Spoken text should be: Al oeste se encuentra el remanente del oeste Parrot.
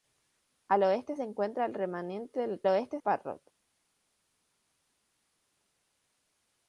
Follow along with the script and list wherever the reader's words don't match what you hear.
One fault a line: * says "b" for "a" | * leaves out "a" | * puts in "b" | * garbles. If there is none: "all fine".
all fine